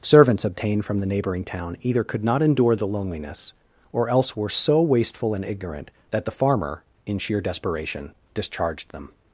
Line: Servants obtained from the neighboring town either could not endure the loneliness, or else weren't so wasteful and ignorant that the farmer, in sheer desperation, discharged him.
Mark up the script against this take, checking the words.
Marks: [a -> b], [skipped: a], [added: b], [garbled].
Servants obtained from the neighboring town either could not endure the loneliness, or else [weren't -> were] so wasteful and ignorant that the farmer, in sheer desperation, discharged [him. -> them]